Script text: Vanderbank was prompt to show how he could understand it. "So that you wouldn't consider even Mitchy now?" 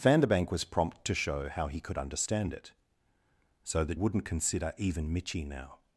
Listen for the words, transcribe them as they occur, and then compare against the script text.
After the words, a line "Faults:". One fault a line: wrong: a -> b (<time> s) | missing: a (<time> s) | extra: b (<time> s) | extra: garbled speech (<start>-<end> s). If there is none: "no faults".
Vanderbank was prompt to show how he could understand it. "So that wouldn't consider even Mitchy now?"
Faults:
missing: you (4.0 s)